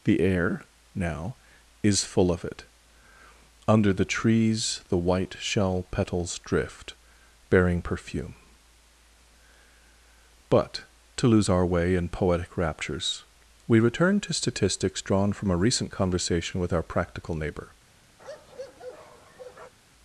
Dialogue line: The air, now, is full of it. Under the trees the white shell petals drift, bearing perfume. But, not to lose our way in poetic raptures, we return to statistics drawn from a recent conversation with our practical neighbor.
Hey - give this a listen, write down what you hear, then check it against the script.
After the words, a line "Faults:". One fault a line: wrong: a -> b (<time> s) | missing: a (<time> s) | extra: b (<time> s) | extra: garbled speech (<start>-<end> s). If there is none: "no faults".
The air, now, is full of it. Under the trees the white shell petals drift, bearing perfume. But, to lose our way in poetic raptures, we return to statistics drawn from a recent conversation with our practical neighbor.
Faults:
missing: not (10.8 s)